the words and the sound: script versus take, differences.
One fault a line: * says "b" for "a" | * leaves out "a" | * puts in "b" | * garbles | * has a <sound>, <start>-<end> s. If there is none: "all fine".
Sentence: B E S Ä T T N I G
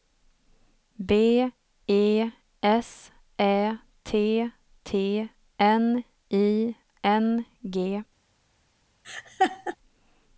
* puts in "N"
* has a laugh, 9.0-9.8 s